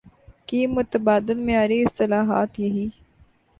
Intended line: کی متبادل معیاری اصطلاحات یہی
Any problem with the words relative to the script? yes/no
no